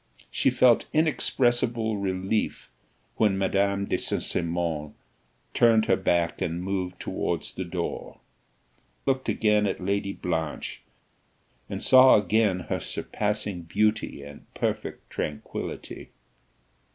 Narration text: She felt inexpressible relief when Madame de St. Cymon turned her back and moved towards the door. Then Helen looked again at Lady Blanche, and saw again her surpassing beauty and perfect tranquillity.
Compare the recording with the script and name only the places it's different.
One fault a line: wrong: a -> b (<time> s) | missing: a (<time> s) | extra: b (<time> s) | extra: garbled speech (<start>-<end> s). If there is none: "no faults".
missing: Then Helen (8.2 s)